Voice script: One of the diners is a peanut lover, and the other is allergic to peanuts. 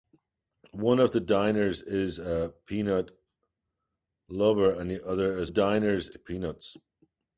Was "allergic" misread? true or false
true